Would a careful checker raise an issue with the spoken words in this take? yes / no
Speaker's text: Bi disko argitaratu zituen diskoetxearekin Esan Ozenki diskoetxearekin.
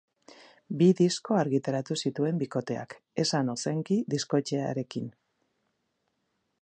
yes